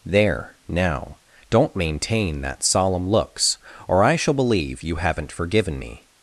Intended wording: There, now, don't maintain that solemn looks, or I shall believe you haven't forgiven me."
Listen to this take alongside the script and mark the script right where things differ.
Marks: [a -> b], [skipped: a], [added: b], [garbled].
There, now, don't maintain that solemn looks, or I shall believe you haven't forgiven me."